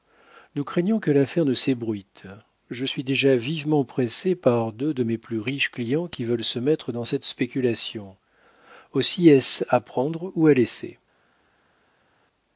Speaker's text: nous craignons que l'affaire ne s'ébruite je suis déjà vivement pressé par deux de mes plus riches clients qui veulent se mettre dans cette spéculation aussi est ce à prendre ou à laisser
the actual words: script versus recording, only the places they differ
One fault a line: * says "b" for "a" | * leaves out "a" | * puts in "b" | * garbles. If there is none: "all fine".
all fine